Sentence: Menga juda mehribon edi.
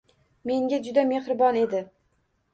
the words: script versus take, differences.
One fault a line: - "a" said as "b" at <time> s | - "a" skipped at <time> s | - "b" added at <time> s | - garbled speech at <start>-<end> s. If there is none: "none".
none